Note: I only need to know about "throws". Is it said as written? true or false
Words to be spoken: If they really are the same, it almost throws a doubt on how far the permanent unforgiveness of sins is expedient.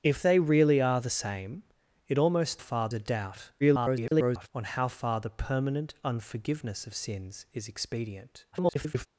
false